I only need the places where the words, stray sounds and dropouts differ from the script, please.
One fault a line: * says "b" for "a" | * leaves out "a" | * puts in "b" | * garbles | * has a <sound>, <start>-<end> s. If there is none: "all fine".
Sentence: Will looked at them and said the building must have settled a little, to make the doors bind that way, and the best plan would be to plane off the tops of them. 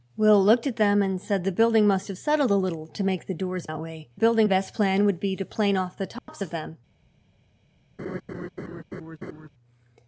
* leaves out "bind"
* says "building" for "and"
* has a dropout, 6.2-6.3 s
* has a laugh, 8.0-9.5 s